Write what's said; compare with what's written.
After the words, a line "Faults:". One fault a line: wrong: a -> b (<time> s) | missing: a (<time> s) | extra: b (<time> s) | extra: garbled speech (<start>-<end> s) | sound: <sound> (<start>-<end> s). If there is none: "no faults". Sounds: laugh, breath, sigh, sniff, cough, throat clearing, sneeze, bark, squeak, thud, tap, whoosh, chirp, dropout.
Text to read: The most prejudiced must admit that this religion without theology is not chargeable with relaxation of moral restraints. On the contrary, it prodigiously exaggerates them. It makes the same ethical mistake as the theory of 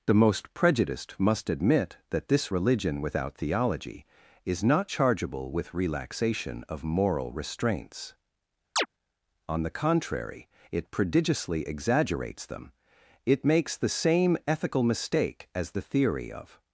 The most prejudiced must admit that this religion without theology is not chargeable with relaxation of moral restraints. On the contrary, it prodigiously exaggerates them. It makes the same ethical mistake as the theory of
Faults:
sound: chirp (8.8-8.9 s)